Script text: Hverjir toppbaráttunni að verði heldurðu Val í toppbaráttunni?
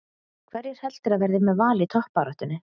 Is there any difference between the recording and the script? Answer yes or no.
yes